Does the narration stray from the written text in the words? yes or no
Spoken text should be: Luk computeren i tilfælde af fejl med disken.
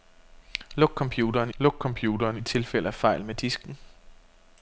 yes